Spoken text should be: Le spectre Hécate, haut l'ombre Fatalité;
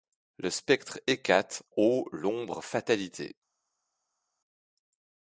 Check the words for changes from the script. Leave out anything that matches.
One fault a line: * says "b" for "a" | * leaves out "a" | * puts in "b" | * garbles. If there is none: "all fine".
all fine